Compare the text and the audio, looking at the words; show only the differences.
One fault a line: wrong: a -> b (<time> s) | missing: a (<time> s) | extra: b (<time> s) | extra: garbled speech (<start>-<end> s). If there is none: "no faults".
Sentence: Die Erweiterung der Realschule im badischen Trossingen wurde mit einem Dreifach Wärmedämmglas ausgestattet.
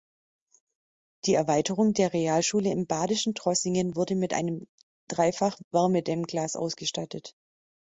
no faults